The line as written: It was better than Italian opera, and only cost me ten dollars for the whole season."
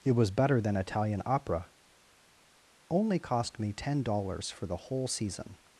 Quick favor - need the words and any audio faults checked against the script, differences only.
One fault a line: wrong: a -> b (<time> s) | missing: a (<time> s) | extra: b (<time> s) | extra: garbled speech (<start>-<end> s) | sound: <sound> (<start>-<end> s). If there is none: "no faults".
missing: and (1.7 s)